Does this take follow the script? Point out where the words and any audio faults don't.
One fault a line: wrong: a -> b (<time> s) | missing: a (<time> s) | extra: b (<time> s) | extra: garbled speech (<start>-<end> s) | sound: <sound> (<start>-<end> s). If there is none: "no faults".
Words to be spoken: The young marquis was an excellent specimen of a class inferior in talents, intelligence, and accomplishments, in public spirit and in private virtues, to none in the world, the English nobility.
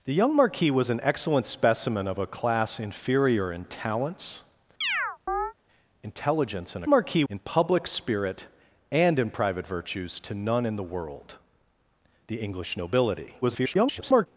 sound: chirp (4.8-5.5 s)
wrong: accomplishments -> marquis (6.9 s)
extra: garbled speech (13.4-14.3 s)